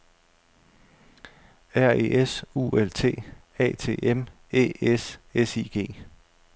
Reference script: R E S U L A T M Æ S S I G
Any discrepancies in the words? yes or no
yes